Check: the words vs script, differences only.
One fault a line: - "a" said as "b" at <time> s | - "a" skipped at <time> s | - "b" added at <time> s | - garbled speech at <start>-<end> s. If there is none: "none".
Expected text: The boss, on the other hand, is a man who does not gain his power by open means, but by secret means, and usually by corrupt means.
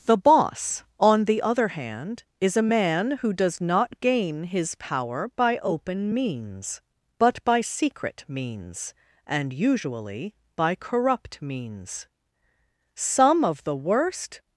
- "Some of the worst" added at 13.0 s